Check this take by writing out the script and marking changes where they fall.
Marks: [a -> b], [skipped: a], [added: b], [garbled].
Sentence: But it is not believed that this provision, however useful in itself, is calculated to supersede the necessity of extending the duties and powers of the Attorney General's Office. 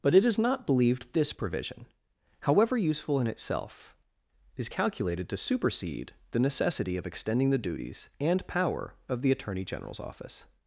But it is not believed [skipped: that] this provision, however useful in itself, is calculated to supersede the necessity of extending the duties and [powers -> power] of the Attorney General's Office.